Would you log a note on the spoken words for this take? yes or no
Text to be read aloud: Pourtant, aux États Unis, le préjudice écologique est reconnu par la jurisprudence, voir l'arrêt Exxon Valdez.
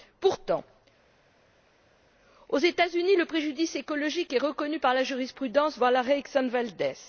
no